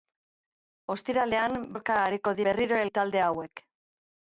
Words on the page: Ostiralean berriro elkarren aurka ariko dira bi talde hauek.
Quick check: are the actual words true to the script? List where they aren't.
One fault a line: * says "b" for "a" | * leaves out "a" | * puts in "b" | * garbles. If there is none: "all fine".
* leaves out "berriro elkarren"
* says "berriro" for "dira"